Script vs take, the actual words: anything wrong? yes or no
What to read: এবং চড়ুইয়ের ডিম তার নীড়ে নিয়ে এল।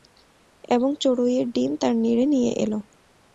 no